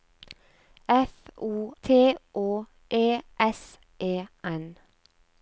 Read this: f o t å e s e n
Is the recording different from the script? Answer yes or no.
no